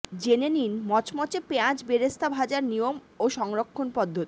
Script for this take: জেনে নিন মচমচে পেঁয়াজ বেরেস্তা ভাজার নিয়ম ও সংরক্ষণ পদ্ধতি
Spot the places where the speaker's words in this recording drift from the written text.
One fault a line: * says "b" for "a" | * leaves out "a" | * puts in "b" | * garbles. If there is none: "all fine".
all fine